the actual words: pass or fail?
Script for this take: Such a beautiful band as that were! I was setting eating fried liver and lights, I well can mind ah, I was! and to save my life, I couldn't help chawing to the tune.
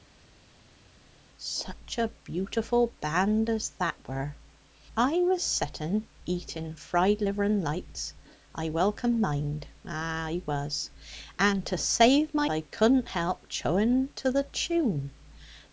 fail